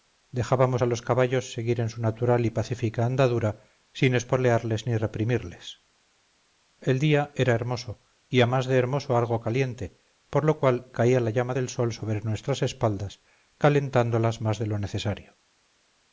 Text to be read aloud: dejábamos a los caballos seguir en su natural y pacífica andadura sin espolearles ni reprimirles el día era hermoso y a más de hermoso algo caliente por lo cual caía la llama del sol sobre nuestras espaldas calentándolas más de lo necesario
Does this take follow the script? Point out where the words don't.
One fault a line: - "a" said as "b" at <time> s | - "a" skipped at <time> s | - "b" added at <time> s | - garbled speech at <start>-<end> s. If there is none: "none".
none